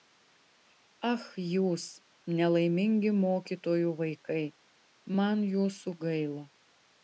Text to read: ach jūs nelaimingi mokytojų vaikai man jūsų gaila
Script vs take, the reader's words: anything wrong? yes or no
no